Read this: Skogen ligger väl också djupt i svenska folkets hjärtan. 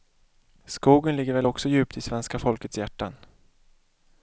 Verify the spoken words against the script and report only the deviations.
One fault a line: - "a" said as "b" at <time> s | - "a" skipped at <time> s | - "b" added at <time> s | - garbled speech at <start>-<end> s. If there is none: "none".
none